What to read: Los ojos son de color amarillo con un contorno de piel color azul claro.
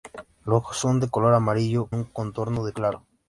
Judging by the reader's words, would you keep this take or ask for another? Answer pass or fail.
fail